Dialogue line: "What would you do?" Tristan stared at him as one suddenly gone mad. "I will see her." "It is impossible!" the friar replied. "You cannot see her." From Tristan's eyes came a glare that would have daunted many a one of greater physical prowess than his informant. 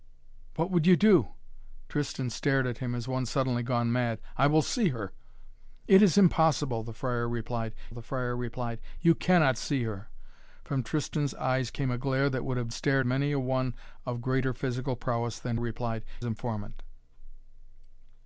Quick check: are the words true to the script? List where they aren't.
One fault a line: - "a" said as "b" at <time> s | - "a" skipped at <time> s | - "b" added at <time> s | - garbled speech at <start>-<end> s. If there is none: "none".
- "the friar replied" added at 7.9 s
- "daunted" said as "stared" at 12.7 s
- "his" said as "replied" at 15.6 s